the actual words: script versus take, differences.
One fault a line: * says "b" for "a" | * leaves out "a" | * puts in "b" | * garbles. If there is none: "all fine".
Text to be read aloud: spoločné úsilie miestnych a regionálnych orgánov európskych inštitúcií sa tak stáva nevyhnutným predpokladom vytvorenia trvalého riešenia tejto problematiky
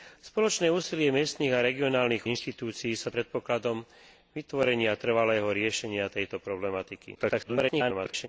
* leaves out "orgánov európskych"
* leaves out "tak stáva nevyhnutným"
* garbles